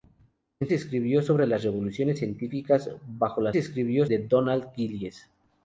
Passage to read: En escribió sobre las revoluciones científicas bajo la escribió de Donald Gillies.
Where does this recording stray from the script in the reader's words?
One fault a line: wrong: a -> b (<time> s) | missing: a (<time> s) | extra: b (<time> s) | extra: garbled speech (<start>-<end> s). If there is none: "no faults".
no faults